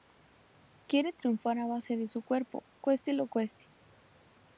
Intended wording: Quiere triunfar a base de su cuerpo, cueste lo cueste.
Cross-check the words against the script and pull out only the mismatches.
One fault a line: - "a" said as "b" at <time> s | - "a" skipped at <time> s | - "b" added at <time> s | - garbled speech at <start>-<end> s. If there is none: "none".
none